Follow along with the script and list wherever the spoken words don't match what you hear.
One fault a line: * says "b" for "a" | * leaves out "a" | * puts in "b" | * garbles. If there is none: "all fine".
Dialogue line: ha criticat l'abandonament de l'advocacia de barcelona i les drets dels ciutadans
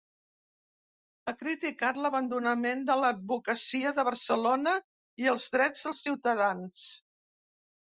* says "els" for "les"